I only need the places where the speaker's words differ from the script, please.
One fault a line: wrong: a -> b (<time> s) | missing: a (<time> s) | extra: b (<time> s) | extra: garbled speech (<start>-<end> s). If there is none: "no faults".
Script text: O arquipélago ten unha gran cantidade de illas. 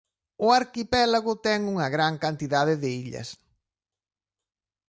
no faults